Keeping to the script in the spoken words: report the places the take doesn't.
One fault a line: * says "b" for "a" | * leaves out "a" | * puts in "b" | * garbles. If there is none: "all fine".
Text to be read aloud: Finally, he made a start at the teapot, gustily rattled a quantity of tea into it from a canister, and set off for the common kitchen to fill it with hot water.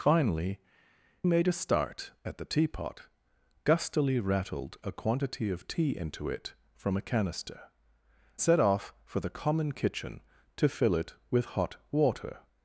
* leaves out "he"
* leaves out "and"